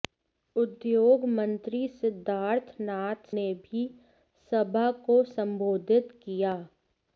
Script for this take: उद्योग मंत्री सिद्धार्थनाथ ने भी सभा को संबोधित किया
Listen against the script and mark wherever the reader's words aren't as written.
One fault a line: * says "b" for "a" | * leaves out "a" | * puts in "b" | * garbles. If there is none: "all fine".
all fine